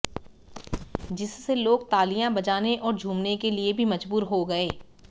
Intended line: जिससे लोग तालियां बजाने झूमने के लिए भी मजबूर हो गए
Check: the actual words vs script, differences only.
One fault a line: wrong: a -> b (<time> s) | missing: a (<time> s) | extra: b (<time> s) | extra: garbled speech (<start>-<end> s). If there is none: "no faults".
extra: और (2.8 s)